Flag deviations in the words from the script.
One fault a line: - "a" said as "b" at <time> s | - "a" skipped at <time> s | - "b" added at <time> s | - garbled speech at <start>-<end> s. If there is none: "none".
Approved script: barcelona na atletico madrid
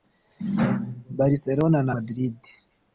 - "atletico" skipped at 1.9 s